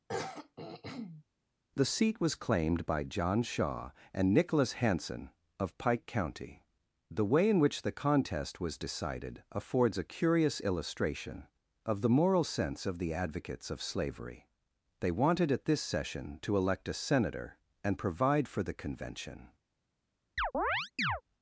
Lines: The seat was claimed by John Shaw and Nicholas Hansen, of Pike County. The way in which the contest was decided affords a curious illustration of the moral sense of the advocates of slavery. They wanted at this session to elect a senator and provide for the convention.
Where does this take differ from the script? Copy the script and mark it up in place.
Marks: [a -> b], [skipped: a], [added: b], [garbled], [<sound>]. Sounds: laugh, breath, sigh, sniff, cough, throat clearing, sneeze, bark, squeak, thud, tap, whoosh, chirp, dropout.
[throat clearing] The seat was claimed by John Shaw and Nicholas Hansen, of Pike County. The way in which the contest was decided affords a curious illustration of the moral sense of the advocates of slavery. They wanted at this session to elect a senator and provide for the convention. [chirp]